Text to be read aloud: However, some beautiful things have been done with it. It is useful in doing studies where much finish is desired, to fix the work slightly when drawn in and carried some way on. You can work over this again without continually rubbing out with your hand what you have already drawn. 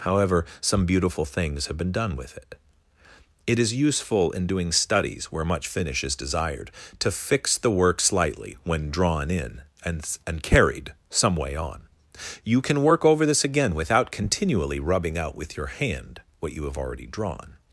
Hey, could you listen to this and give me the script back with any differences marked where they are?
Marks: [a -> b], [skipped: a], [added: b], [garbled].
However, some beautiful things have been done with it. It is useful in doing studies where much finish is desired, to fix the work slightly when drawn in and [added: and] carried some way on. You can work over this again without continually rubbing out with your hand what you have already drawn.